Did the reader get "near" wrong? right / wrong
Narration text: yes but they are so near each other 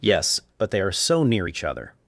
right